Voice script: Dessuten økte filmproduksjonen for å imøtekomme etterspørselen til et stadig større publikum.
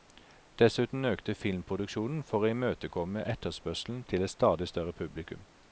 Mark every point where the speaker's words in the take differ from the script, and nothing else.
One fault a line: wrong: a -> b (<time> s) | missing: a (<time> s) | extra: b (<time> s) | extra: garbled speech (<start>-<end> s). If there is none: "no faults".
no faults